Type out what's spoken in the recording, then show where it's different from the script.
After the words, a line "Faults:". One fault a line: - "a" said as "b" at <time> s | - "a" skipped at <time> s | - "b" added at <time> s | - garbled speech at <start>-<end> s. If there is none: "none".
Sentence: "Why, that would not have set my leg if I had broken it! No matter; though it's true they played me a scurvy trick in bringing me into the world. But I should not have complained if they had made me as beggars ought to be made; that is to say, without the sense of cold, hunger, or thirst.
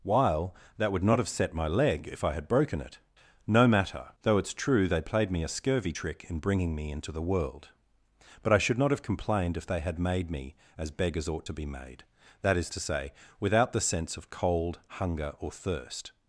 "While, that would not have set my leg if I had broken it! No matter; though it's true they played me a scurvy trick in bringing me into the world. But I should not have complained if they had made me as beggars ought to be made; that is to say, without the sense of cold, hunger, or thirst.
Faults:
- "Why" said as "While" at 0.0 s